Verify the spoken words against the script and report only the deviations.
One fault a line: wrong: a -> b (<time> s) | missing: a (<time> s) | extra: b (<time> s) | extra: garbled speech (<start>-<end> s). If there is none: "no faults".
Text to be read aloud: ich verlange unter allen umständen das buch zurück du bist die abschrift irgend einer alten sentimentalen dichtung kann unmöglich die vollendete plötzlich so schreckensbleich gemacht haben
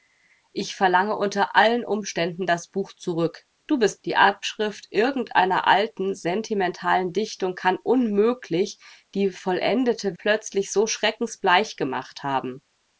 no faults